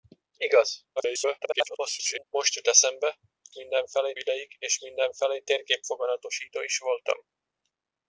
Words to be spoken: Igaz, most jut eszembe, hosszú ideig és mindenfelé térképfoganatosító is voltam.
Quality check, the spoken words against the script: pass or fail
fail